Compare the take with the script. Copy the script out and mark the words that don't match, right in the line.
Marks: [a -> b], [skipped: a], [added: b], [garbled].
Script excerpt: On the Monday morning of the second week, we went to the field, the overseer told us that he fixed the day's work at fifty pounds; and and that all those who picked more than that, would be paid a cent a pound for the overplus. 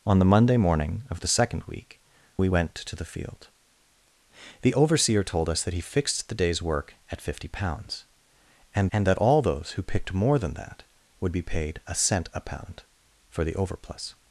On the Monday morning of the second week, we went to the field, the overseer told us that he fixed the day's work at fifty pounds; and and that all those who picked more than that, would be paid a cent a pound for the overplus.